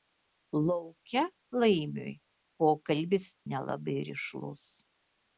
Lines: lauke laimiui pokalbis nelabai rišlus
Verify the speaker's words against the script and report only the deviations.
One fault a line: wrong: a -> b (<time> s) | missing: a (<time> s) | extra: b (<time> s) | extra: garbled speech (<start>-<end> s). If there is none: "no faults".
no faults